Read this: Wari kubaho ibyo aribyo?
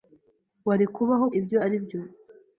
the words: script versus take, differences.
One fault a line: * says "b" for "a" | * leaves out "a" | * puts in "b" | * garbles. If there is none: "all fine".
all fine